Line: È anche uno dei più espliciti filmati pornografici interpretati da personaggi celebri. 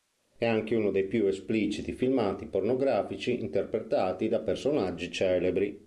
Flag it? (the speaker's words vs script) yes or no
no